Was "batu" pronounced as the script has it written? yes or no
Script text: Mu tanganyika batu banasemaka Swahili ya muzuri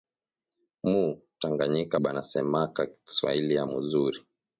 no